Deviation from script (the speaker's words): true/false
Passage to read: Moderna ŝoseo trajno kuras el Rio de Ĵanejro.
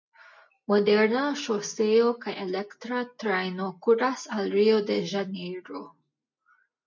true